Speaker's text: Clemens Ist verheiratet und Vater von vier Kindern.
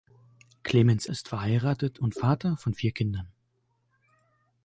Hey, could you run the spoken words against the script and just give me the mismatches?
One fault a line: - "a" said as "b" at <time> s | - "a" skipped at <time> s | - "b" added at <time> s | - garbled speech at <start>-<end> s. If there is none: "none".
none